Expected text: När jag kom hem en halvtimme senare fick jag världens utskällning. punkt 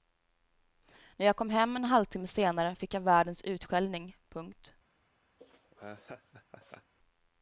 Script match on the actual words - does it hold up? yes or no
yes